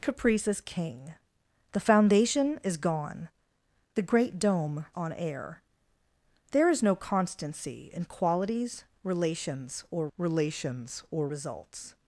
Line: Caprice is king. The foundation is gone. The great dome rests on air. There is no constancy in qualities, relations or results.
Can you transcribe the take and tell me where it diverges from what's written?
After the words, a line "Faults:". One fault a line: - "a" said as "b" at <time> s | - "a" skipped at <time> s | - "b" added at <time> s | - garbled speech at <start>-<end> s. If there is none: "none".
Caprice is king. The foundation is gone. The great dome on air. There is no constancy in qualities, relations or relations or results.
Faults:
- "rests" skipped at 4.9 s
- "relations or" added at 10.2 s